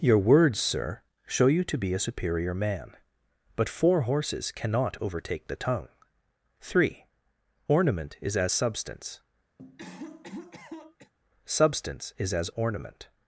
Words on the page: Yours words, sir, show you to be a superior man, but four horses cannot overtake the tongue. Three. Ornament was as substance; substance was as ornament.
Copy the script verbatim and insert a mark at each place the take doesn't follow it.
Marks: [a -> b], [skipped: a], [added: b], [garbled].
[Yours -> Your] words, sir, show you to be a superior man, but four horses cannot overtake the tongue. Three. Ornament [was -> is] as substance; substance [was -> is] as ornament.